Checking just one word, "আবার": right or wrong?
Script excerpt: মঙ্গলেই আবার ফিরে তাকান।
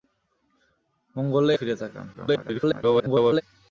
wrong